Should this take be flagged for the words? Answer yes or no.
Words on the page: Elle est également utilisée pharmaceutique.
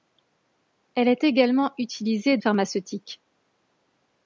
no